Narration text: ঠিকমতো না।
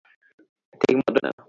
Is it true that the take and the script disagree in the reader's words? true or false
false